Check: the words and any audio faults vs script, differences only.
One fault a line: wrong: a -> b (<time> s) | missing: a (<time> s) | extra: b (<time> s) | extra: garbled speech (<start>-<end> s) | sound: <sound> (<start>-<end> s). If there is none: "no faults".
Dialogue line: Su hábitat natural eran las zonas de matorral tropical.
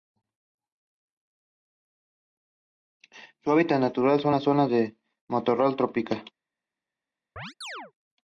wrong: eran -> son (4.2 s)
sound: chirp (7.4-7.9 s)